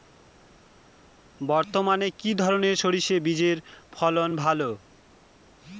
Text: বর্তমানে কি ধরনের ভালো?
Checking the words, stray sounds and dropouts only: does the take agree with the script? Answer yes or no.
no